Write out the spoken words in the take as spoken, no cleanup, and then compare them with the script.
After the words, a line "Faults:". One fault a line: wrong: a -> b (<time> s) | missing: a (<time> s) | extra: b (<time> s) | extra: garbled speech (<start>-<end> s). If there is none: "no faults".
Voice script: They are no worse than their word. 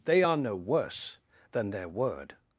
They are no worse than their word.
Faults:
no faults